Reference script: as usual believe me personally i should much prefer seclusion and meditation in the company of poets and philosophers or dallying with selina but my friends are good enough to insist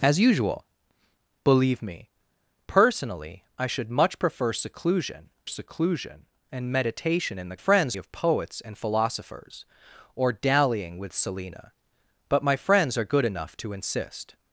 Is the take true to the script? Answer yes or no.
no